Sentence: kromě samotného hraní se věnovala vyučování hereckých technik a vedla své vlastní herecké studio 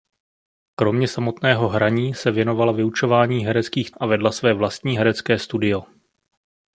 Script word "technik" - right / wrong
wrong